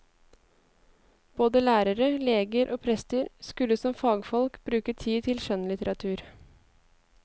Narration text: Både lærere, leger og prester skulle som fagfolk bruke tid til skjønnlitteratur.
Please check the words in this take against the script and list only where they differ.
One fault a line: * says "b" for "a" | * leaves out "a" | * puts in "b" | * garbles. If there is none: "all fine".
all fine